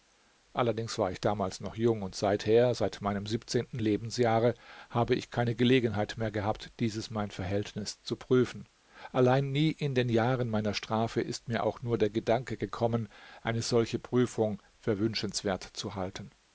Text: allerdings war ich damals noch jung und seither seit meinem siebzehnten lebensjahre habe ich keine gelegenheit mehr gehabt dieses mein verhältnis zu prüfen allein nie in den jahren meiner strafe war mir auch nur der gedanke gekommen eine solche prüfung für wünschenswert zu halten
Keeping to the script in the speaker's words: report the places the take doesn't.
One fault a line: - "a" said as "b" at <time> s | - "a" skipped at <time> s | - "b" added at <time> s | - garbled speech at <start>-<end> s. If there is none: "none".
- "war" said as "ist" at 11.2 s